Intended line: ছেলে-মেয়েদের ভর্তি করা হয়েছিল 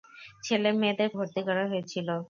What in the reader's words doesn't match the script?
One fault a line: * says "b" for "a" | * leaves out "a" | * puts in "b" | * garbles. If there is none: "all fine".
all fine